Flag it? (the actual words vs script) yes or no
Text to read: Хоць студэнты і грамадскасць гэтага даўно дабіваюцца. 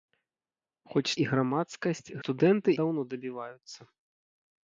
yes